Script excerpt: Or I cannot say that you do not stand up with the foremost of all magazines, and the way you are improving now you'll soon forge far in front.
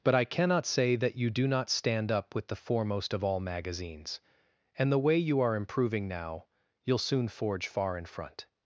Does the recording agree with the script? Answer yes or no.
no